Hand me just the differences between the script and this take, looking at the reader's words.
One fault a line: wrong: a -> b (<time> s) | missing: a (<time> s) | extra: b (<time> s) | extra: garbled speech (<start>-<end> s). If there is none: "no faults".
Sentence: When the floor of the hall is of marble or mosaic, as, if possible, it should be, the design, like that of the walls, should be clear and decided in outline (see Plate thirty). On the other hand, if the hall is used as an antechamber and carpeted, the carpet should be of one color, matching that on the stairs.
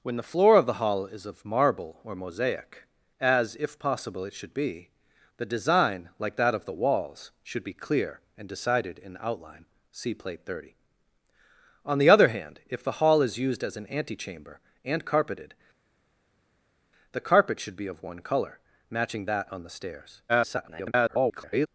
extra: garbled speech (20.3-21.7 s)